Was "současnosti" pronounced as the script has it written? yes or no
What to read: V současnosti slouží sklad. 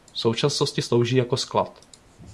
yes